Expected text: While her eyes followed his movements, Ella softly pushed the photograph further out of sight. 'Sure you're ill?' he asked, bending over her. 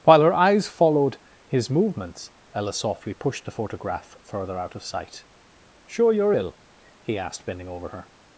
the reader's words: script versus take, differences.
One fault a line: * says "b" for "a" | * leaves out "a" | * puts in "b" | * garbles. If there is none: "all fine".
all fine